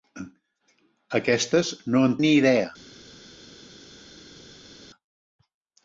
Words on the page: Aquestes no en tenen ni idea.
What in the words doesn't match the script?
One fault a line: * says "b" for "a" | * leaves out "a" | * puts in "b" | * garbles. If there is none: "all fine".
* leaves out "tenen"